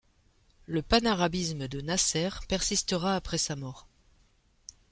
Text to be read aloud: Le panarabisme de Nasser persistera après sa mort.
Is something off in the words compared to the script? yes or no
no